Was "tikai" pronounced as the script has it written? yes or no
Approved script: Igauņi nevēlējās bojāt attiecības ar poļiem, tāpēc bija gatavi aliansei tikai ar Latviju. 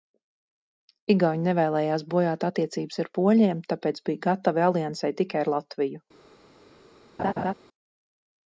yes